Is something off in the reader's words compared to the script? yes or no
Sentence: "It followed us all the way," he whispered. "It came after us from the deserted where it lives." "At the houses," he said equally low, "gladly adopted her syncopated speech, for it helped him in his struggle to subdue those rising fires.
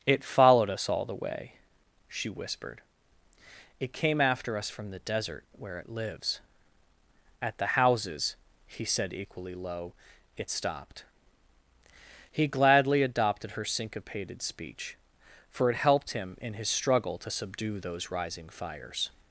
yes